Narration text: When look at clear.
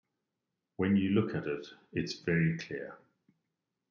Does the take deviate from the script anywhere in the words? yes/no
yes